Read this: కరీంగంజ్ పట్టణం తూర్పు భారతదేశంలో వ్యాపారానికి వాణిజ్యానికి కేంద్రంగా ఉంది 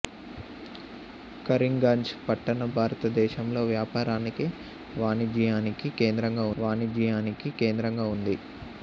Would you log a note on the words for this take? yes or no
yes